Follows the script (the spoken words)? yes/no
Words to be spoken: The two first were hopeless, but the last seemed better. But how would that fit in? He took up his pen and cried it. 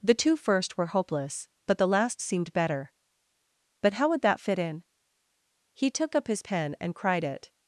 yes